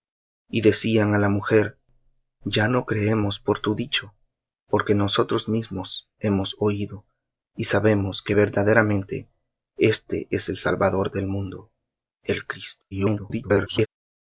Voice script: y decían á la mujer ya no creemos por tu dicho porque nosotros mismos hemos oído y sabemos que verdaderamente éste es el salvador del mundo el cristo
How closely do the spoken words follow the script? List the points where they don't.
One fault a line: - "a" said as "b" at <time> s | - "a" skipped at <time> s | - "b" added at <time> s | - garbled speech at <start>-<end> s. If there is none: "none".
- garbled speech at 12.9-13.9 s